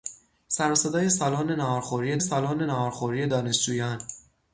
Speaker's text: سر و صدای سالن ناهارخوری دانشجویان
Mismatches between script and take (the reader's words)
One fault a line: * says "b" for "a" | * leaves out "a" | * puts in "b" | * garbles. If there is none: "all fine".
* puts in "سالن ناهارخوری"